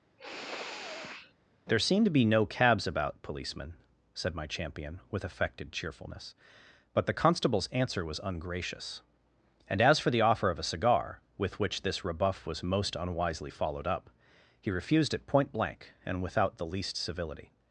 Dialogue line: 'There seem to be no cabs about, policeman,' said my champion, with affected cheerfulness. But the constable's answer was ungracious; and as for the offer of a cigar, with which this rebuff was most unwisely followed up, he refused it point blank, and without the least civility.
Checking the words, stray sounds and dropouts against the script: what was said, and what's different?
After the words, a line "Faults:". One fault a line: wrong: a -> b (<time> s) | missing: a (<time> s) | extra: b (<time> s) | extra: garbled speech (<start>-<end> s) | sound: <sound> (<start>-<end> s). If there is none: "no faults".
'There seem to be no cabs about, policeman,' said my champion, with affected cheerfulness. But the constable's answer was ungracious; and as for the offer of a cigar, with which this rebuff was most unwisely followed up, he refused it point blank, and without the least civility.
Faults:
sound: sniff (0.2-1.3 s)